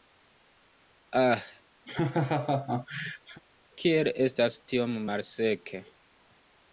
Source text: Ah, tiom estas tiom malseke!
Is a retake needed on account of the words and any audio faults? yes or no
yes